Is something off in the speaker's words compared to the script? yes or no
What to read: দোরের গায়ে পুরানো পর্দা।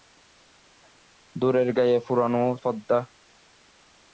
no